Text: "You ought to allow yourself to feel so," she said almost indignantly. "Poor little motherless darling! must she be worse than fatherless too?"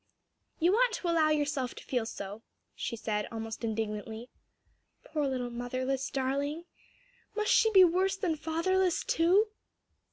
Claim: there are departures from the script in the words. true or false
false